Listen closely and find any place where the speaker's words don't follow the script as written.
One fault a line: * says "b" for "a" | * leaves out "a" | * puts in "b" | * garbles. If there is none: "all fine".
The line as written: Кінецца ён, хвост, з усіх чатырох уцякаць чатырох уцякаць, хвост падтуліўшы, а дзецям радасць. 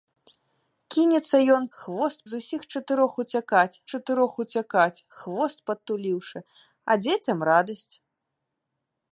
all fine